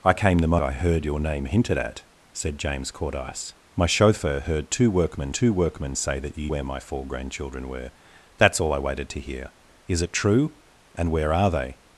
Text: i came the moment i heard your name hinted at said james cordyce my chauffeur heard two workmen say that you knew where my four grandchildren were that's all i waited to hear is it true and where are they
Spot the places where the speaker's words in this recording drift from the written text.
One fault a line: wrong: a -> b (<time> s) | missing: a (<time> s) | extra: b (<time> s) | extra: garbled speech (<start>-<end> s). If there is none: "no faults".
missing: moment (0.6 s)
extra: two workmen (5.3 s)
missing: knew (6.5 s)